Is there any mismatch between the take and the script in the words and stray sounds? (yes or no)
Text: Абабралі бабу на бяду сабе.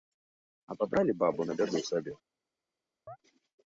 yes